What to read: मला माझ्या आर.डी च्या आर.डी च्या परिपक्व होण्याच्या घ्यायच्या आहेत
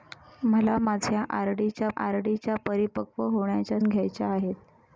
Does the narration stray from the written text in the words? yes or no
no